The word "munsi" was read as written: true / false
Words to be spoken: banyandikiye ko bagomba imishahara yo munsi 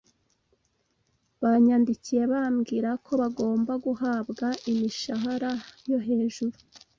false